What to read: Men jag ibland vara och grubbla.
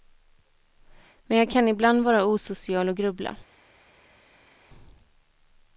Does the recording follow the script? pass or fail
fail